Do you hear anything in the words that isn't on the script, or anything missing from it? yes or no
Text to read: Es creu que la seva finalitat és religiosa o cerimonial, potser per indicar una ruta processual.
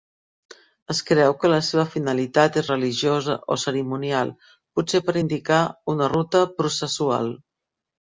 no